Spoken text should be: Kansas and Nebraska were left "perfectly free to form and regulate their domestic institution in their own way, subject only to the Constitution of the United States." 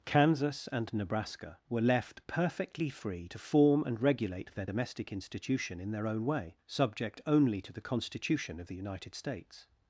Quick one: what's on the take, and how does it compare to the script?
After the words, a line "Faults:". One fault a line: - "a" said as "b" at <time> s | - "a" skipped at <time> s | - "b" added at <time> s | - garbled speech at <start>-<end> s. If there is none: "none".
Kansas and Nebraska were left "perfectly free to form and regulate their domestic institution in their own way, subject only to the Constitution of the United States."
Faults:
none